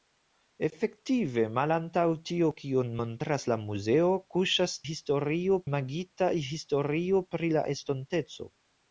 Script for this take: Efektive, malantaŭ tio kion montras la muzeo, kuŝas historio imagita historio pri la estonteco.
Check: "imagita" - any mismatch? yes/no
no